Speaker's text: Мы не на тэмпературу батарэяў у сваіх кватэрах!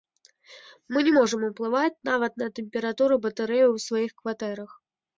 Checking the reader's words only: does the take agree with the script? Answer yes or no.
no